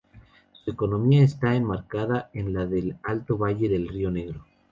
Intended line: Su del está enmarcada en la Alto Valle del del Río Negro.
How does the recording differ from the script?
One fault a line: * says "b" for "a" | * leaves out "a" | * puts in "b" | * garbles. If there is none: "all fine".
* says "economía" for "del"
* puts in "del"
* leaves out "del"